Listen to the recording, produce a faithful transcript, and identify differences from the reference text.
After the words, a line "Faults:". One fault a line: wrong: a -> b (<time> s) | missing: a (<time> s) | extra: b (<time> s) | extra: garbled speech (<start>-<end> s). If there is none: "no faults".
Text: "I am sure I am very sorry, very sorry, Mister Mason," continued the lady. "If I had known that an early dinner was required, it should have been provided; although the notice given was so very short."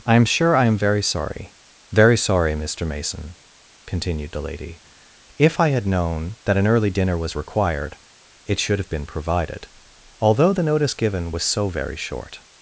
"I am sure I am very sorry, very sorry, Mister Mason," continued the lady. "If I had known that an early dinner was required, it should have been provided; although the notice given was so very short."
Faults:
no faults